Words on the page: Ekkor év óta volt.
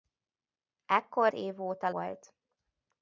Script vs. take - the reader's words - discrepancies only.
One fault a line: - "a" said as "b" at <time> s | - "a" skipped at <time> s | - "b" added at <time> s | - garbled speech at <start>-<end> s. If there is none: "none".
none